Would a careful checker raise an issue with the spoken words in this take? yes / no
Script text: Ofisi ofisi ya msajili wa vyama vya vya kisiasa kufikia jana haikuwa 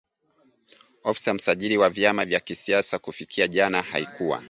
yes